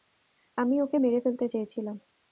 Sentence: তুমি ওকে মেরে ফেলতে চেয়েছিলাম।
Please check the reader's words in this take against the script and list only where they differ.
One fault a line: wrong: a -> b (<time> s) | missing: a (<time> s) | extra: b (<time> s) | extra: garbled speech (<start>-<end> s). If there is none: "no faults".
wrong: তুমি -> আমি (0.6 s)